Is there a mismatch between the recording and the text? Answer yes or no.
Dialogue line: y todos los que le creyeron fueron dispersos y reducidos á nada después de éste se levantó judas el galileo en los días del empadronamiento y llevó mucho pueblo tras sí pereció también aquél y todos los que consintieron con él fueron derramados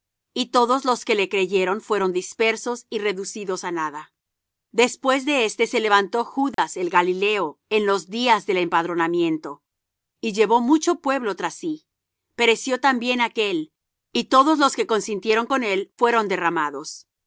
no